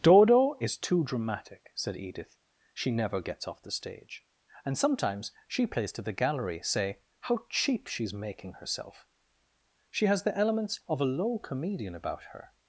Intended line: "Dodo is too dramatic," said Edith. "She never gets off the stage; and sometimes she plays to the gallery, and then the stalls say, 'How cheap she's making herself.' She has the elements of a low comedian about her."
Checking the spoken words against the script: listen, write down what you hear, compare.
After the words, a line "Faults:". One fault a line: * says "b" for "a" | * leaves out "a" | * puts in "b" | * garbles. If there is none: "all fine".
"Dodo is too dramatic," said Edith. "She never gets off the stage; and sometimes she plays to the gallery, say, 'How cheap she's making herself.' She has the elements of a low comedian about her."
Faults:
* leaves out "and then the stalls"